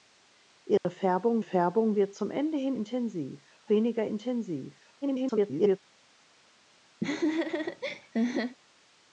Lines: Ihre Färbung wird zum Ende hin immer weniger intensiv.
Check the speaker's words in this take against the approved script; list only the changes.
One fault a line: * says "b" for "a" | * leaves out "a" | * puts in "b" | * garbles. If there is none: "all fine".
* puts in "Färbung"
* says "intensiv" for "immer"
* garbles